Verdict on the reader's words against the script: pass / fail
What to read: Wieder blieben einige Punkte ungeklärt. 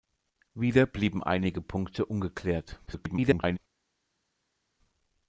fail